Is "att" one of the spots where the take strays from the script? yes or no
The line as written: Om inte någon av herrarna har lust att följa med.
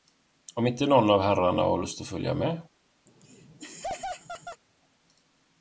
no